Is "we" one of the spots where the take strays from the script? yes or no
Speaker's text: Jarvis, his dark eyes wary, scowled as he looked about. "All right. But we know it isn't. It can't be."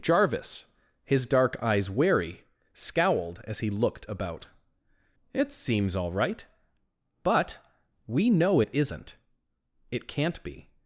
no